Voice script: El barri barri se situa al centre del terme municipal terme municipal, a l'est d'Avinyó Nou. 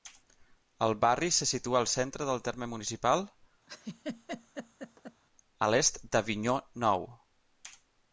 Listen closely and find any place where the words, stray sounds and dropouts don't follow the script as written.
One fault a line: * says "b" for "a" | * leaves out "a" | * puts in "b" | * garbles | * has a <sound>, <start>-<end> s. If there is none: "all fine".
* leaves out "barri"
* leaves out "terme municipal"
* has a laugh, 3.7-5.2 s